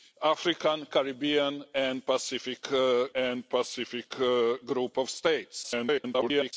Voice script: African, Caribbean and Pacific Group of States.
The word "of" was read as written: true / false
true